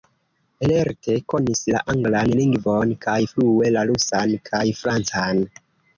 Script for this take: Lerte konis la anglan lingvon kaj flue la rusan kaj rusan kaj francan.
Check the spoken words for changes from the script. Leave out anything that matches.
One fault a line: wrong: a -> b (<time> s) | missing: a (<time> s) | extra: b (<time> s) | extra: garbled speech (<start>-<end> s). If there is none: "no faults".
missing: rusan kaj (4.6 s)